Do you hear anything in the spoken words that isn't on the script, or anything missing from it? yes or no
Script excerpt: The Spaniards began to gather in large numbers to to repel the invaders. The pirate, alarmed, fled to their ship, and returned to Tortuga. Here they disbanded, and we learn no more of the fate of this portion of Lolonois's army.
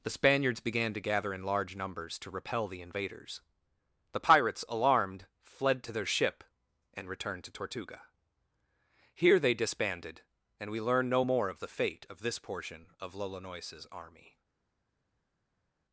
yes